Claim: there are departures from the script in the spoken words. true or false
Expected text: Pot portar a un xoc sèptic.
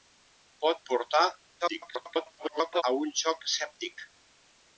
true